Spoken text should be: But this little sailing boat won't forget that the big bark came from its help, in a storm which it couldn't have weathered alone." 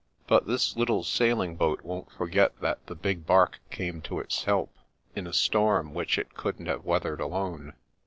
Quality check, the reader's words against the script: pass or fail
fail